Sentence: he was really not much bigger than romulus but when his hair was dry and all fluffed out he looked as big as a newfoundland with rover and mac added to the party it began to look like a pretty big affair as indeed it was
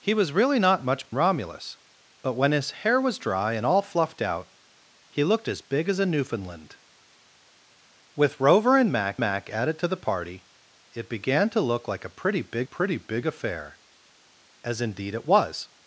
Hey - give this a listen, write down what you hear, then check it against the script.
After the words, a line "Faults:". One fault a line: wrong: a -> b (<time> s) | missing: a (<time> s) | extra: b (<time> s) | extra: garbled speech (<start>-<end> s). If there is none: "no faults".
he was really not much romulus but when his hair was dry and all fluffed out he looked as big as a newfoundland with rover and mac mac added to the party it began to look like a pretty big pretty big affair as indeed it was
Faults:
missing: bigger than (1.1 s)
extra: mac (9.2 s)
extra: pretty big (12.6 s)